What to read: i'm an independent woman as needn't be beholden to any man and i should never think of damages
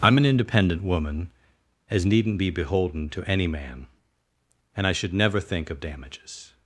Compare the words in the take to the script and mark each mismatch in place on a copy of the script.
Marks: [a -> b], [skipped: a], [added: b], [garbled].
i'm an independent woman as needn't be beholden to any man and i should never think of damages